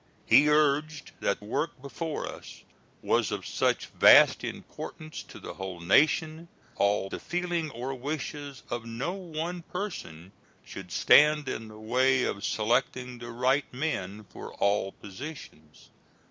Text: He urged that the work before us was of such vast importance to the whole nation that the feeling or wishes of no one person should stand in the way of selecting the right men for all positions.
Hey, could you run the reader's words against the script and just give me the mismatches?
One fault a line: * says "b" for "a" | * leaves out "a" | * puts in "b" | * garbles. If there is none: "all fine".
* leaves out "the"
* says "all" for "that"